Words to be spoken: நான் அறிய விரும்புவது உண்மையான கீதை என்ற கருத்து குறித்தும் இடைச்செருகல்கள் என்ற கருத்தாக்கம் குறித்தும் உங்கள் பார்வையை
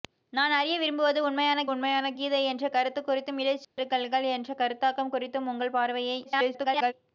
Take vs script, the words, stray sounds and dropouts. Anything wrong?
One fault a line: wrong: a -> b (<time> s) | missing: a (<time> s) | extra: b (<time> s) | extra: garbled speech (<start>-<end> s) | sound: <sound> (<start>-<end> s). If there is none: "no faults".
extra: உண்மையான (1.7 s)
sound: dropout (3.6-3.8 s)
extra: garbled speech (6.2-6.9 s)